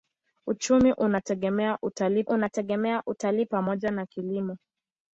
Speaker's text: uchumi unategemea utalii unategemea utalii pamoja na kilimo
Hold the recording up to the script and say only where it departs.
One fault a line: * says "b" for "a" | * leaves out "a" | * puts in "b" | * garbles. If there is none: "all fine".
all fine